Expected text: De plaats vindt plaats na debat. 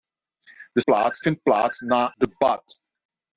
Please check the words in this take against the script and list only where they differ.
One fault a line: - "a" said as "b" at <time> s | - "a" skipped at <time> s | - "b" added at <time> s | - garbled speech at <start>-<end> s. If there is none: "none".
none